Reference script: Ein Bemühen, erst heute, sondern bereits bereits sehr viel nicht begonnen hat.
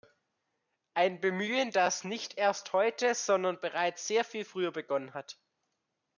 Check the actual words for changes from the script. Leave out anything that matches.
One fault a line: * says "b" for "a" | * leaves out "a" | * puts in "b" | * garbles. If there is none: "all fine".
* puts in "das nicht"
* leaves out "bereits"
* says "früher" for "nicht"